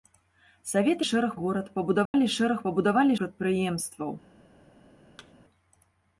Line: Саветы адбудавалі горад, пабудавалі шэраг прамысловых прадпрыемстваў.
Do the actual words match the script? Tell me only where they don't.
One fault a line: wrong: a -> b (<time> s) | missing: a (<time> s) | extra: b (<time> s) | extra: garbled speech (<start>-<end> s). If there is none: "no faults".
wrong: адбудавалі -> шэраг (1.1 s)
wrong: прамысловых -> пабудавалі (2.7 s)